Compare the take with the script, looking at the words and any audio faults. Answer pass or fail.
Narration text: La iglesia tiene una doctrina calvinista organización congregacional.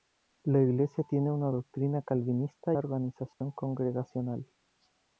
fail